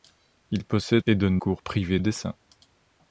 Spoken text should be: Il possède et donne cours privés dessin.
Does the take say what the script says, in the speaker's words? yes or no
yes